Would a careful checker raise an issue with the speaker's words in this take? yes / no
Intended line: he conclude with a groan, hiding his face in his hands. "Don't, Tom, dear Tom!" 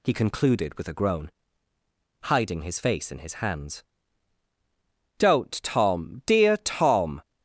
yes